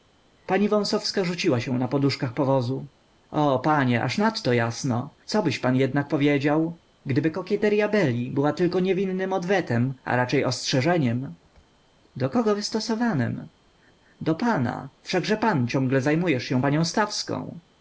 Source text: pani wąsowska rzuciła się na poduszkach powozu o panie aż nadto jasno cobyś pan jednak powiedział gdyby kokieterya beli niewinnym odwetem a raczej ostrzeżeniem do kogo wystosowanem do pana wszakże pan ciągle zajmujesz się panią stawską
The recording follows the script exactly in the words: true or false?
false